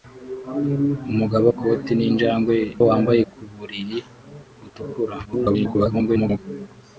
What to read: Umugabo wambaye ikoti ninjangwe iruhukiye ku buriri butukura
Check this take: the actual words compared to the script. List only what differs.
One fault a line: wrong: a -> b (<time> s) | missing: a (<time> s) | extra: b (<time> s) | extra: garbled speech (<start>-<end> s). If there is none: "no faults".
missing: wambaye (1.5 s)
wrong: iruhukiye -> wambaye (2.9 s)
extra: garbled speech (5.2-6.4 s)